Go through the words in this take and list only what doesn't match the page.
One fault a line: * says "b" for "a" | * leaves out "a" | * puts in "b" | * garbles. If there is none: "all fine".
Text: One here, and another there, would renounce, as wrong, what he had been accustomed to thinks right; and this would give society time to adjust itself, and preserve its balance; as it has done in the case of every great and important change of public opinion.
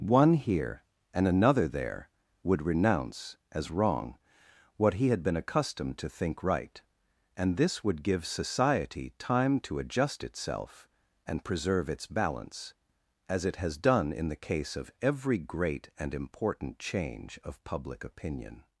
* says "think" for "thinks"